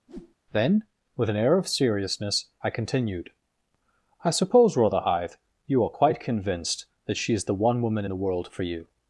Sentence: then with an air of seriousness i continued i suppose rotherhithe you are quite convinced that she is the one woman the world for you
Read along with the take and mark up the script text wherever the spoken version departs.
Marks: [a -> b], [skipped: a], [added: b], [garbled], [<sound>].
[whoosh] then with an air of seriousness i continued i suppose rotherhithe you are quite convinced that she is the one woman the world for you